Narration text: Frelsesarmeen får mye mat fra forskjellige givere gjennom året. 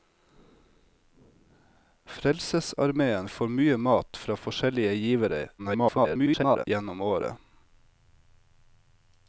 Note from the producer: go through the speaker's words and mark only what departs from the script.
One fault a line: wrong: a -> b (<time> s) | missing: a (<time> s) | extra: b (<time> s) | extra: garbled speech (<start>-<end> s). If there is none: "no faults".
extra: garbled speech (5.6-6.7 s)